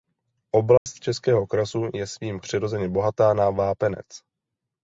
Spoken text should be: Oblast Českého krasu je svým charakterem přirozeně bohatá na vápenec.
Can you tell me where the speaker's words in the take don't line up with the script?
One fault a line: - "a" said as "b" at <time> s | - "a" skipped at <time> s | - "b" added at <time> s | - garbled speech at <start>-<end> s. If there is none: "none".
- "charakterem" skipped at 2.4 s